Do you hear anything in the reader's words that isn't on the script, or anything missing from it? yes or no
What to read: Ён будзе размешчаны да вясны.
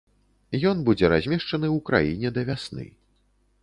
yes